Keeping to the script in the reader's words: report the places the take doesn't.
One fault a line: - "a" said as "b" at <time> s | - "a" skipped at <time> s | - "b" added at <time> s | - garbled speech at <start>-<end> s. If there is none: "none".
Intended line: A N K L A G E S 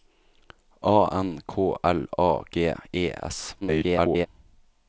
- garbled speech at 3.6-4.3 s